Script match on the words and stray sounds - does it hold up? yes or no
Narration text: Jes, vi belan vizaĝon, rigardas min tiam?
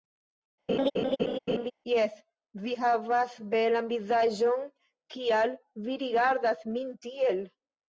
no